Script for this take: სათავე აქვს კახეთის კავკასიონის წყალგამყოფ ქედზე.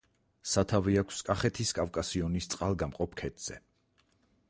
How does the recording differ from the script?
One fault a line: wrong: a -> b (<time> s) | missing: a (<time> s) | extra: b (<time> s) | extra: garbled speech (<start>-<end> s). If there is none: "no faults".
no faults